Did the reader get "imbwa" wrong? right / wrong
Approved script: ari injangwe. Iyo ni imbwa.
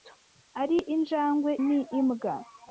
right